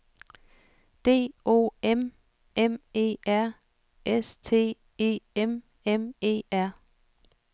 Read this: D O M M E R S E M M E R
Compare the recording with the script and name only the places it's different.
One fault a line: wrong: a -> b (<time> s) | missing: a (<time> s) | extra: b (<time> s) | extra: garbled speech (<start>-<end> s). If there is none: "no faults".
extra: T (4.3 s)